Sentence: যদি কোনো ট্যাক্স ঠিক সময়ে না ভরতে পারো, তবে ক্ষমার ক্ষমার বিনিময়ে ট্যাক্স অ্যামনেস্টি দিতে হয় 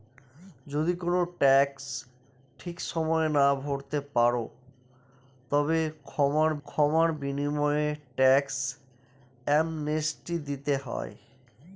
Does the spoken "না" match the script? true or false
true